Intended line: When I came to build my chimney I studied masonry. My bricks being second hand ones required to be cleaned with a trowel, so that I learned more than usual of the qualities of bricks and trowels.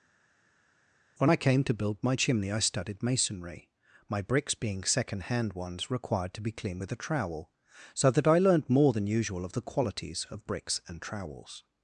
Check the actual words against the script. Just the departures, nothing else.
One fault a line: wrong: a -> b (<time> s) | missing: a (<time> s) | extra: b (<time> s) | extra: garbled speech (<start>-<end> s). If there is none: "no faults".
no faults